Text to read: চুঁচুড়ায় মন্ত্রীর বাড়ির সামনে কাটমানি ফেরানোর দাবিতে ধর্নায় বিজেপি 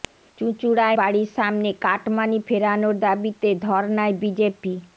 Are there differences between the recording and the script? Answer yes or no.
yes